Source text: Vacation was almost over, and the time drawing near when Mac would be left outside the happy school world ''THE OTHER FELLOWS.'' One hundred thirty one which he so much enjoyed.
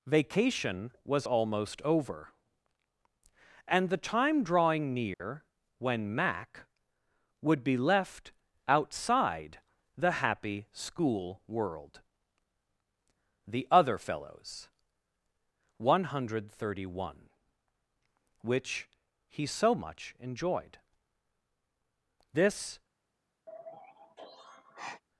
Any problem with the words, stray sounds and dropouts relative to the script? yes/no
yes